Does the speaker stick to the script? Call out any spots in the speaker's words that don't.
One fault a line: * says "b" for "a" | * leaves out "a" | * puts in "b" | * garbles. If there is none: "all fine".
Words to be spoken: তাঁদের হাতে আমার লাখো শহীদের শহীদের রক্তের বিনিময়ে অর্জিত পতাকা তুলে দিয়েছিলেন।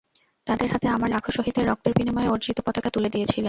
* leaves out "শহীদের"